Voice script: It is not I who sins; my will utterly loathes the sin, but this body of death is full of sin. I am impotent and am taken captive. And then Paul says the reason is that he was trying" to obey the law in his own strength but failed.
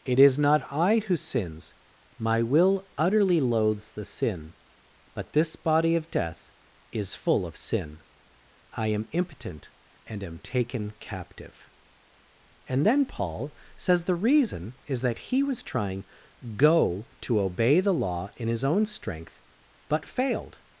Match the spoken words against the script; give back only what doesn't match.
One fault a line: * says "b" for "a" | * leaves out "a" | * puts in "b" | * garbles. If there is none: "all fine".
* puts in "go"